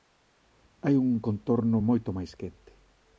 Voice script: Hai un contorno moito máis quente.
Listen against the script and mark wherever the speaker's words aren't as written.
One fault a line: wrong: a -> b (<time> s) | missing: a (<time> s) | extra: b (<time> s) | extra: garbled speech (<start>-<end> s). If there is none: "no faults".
no faults